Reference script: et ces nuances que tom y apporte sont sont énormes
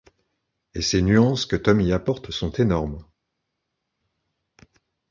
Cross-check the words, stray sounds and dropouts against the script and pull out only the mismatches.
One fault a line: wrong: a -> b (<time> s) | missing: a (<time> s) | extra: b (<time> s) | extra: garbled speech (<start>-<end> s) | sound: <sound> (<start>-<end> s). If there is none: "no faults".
missing: sont (2.5 s)